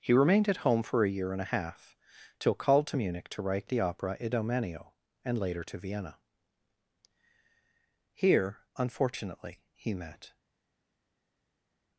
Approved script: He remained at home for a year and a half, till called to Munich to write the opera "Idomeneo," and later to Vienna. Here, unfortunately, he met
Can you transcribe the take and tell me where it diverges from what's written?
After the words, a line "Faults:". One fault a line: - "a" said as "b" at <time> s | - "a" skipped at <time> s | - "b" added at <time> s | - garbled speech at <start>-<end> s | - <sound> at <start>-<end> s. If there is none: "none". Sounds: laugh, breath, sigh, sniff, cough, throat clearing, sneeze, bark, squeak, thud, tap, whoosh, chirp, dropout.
He remained at home for a year and a half, till called to Munich to write the opera "Idomeneo," and later to Vienna. Here, unfortunately, he met
Faults:
none